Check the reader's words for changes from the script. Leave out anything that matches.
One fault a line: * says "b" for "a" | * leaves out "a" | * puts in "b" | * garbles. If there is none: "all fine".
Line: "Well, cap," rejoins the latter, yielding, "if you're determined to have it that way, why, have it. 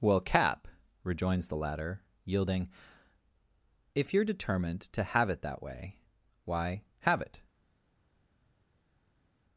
all fine